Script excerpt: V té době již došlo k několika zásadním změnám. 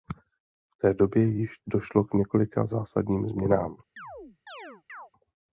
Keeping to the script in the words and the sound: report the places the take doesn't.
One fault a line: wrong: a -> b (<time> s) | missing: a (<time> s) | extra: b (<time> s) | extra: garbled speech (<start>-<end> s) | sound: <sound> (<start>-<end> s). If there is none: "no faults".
sound: chirp (4.0-5.1 s)